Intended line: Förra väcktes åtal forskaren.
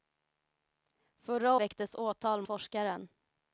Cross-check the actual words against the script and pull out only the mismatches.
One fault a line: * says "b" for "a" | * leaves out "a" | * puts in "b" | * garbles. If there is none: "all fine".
all fine